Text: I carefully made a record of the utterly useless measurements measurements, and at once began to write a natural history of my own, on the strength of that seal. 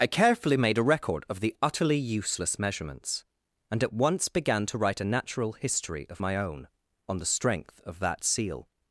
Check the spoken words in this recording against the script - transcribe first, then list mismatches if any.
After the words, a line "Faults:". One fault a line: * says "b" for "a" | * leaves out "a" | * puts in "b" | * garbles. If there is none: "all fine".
I carefully made a record of the utterly useless measurements, and at once began to write a natural history of my own, on the strength of that seal.
Faults:
* leaves out "measurements"